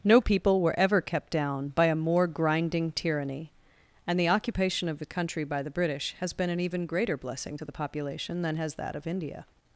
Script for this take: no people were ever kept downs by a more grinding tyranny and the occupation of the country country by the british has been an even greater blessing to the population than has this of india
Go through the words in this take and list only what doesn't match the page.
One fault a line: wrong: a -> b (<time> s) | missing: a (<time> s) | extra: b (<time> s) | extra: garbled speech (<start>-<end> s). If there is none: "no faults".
wrong: downs -> down (1.3 s)
missing: country (5.4 s)
wrong: this -> that (8.7 s)